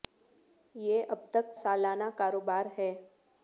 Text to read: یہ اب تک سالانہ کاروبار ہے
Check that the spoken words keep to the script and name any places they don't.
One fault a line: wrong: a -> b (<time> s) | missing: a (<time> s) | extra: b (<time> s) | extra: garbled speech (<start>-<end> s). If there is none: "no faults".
no faults